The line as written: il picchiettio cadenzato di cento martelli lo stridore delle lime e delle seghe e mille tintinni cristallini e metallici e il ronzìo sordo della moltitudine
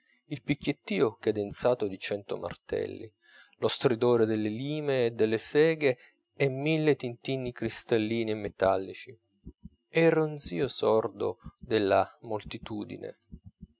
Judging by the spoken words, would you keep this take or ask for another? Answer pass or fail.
pass